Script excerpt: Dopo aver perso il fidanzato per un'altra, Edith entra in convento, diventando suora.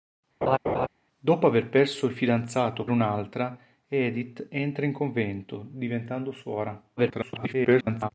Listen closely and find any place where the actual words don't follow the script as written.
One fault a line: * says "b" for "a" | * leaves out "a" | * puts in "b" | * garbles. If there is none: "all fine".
* leaves out "per"
* garbles